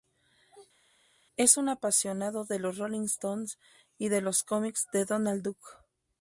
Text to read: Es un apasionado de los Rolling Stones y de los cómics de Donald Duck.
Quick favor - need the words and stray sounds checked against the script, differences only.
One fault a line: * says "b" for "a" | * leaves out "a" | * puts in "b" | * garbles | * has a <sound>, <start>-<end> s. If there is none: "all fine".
all fine